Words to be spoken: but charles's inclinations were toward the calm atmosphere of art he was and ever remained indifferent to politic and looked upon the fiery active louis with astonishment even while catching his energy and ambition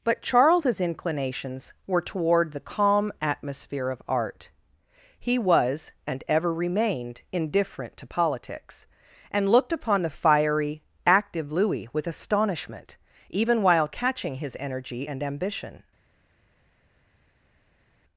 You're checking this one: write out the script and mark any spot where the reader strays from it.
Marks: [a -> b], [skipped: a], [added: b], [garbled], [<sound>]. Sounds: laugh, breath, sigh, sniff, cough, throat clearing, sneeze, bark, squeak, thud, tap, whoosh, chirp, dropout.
but charles's inclinations were toward the calm atmosphere of art he was and ever remained indifferent to [politic -> politics] and looked upon the fiery active louis with astonishment even while catching his energy and ambition